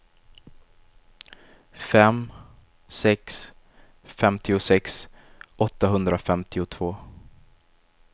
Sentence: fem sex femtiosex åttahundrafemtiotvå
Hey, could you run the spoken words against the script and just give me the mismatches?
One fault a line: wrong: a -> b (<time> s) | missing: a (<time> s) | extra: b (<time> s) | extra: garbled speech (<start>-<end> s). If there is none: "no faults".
no faults